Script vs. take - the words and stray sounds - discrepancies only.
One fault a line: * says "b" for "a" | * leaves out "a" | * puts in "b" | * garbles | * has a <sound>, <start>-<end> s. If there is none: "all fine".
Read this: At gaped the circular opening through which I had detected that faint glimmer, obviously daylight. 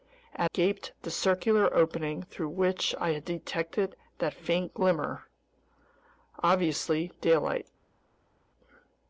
all fine